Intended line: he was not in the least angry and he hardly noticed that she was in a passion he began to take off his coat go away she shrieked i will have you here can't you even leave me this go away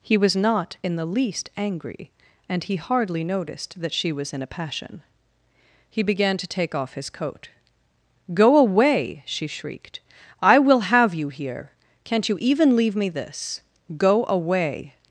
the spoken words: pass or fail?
pass